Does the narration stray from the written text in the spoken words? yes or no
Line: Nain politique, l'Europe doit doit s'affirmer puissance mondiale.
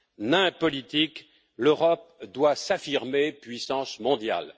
yes